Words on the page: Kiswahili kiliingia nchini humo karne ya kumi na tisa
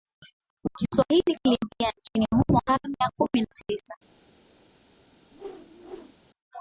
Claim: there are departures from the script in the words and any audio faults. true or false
true